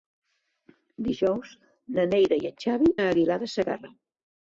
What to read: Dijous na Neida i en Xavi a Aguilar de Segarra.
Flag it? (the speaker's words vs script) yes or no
no